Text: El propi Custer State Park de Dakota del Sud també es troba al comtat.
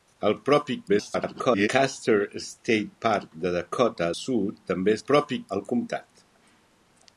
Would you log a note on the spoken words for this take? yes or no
yes